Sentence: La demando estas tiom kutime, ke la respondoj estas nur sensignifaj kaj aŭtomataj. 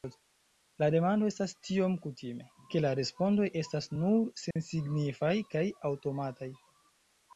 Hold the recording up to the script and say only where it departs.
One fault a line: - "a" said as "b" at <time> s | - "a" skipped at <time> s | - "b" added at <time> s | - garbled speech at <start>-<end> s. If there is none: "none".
none